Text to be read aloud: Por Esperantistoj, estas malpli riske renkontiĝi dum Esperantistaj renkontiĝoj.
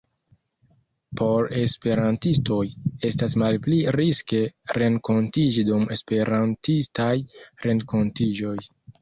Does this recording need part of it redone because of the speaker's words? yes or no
no